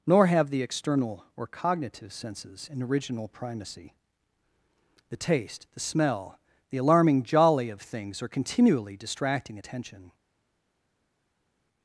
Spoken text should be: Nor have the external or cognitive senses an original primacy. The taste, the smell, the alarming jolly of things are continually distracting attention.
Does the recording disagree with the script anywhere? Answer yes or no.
no